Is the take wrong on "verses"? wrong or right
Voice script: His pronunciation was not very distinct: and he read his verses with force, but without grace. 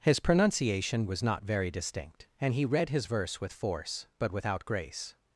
wrong